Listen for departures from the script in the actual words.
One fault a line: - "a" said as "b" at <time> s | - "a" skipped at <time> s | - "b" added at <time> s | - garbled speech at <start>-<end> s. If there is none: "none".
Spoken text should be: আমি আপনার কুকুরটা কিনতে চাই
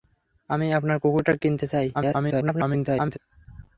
- garbled speech at 1.9-3.2 s